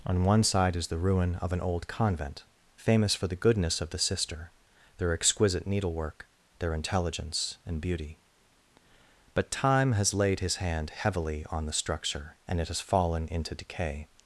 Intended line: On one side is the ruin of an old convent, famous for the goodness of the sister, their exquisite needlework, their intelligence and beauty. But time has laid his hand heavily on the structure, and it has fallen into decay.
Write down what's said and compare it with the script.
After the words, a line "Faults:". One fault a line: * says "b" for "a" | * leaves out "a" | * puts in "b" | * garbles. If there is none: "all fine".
On one side is the ruin of an old convent, famous for the goodness of the sister, their exquisite needlework, their intelligence and beauty. But time has laid his hand heavily on the structure, and it has fallen into decay.
Faults:
all fine